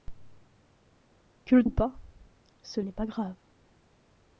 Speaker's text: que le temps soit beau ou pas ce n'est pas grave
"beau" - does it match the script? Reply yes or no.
no